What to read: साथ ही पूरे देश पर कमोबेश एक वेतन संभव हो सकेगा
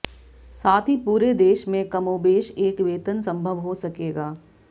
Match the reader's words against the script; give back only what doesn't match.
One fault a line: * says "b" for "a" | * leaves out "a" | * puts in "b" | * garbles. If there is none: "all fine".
* says "में" for "पर"